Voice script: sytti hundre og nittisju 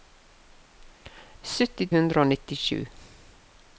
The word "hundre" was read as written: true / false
true